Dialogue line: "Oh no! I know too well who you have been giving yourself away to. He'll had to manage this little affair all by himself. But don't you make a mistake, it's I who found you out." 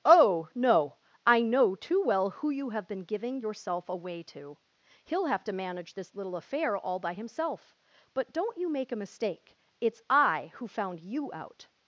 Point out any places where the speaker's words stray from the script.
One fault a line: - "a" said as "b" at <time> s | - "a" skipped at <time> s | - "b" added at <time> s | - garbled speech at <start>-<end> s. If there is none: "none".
- "had" said as "have" at 5.2 s